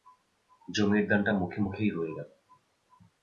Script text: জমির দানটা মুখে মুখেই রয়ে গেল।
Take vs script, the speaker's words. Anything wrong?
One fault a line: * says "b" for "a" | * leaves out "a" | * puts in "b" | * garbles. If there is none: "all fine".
all fine